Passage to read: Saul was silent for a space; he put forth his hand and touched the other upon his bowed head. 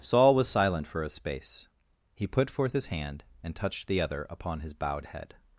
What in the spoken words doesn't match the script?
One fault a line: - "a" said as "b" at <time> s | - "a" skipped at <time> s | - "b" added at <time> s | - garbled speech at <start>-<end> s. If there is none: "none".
none